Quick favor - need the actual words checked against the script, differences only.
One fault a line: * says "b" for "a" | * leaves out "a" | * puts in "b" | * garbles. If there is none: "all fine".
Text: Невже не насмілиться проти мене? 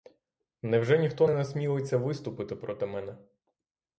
* puts in "ніхто"
* puts in "виступити"